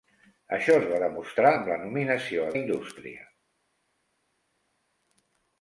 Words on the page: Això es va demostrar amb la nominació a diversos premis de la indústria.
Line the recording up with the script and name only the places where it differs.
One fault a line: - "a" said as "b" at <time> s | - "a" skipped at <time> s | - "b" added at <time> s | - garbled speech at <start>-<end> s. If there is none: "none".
- "diversos premis de" skipped at 2.5 s